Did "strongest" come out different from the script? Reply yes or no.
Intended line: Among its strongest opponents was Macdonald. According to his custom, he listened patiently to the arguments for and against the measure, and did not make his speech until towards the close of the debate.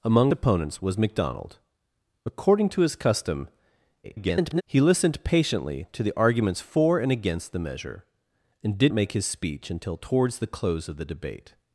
yes